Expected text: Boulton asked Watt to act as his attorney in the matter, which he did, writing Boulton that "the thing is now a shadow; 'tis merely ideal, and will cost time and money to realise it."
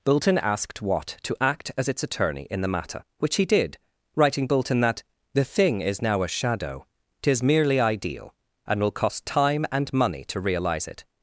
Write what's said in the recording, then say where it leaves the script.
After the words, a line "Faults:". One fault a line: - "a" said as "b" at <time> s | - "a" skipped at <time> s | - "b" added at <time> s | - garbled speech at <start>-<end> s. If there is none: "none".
Boulton asked Watt to act as its attorney in the matter, which he did, writing Boulton that "the thing is now a shadow; 'tis merely ideal, and will cost time and money to realise it."
Faults:
- "his" said as "its" at 1.9 s